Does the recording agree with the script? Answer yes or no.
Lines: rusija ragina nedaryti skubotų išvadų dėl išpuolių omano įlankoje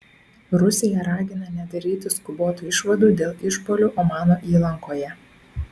yes